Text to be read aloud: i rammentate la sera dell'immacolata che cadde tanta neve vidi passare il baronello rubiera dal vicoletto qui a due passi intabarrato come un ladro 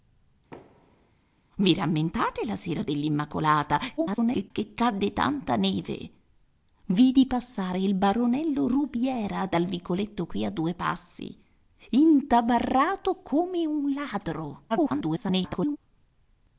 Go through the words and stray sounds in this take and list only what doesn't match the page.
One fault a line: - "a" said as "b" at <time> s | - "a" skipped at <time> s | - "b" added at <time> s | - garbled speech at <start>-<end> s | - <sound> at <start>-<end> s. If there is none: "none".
- thud at 0.5-1.1 s
- garbled speech at 4.0-4.5 s
- garbled speech at 14.7-15.8 s